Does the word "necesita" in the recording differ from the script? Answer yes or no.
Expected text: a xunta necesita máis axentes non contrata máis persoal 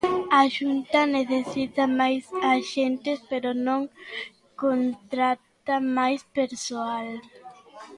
no